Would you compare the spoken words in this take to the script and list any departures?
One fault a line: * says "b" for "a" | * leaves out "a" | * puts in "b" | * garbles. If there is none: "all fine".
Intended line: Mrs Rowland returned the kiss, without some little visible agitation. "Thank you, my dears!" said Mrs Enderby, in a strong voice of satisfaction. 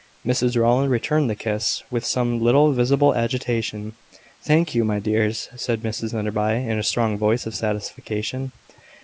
* says "with" for "without"